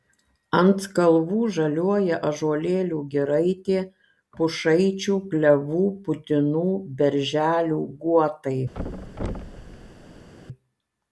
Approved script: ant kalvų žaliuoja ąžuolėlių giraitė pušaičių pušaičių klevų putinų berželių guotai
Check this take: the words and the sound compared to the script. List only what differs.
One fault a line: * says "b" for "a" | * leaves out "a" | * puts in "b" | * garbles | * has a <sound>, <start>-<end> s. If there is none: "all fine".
* leaves out "pušaičių"
* has a thud, 8.7-10.3 s